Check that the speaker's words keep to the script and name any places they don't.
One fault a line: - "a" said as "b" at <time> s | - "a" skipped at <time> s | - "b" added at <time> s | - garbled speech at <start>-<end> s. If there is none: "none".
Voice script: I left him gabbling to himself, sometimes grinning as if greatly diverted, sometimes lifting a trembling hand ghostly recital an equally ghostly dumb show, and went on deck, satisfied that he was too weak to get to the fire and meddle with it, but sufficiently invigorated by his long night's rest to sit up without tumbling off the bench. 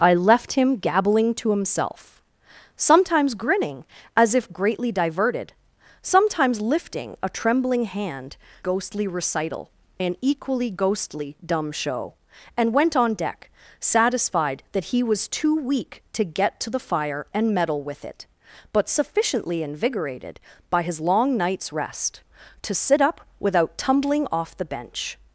none